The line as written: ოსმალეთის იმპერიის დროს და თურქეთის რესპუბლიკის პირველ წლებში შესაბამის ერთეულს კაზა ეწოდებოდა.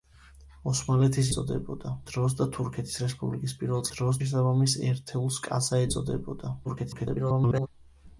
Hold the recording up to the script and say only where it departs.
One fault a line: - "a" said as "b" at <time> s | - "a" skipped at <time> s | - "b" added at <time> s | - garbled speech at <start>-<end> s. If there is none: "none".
- "იმპერიის" said as "ეწოდებოდა" at 1.3 s
- "წლებში" said as "დროს" at 3.9 s
- garbled speech at 6.6-7.7 s